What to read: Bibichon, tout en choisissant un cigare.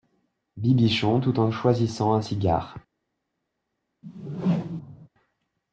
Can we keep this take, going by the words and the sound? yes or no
no